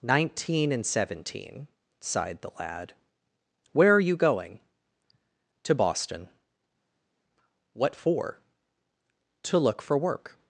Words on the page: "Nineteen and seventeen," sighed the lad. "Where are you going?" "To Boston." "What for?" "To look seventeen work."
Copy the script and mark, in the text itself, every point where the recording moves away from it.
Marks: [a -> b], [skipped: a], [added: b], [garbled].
"Nineteen and seventeen," sighed the lad. "Where are you going?" "To Boston." "What for?" "To look [seventeen -> for] work."